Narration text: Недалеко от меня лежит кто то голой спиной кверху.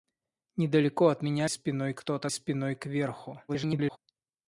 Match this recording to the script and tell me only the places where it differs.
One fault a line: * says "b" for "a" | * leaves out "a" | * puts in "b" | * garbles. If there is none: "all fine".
* says "спиной" for "лежит"
* leaves out "голой"
* garbles